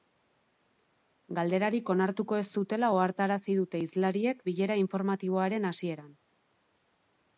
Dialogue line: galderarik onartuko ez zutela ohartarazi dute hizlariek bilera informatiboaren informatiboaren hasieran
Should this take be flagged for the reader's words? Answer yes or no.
yes